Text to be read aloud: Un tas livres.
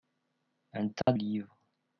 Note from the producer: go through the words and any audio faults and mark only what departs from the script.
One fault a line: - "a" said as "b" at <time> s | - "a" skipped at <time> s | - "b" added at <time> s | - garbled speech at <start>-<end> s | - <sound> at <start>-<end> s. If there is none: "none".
- dropout at 1.0-1.1 s